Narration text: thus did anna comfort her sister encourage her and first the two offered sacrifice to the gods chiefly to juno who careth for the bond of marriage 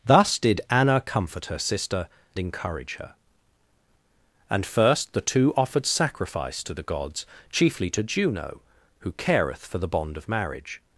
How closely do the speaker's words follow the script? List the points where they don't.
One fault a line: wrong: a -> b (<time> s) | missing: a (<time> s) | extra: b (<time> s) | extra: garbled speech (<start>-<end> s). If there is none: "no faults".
no faults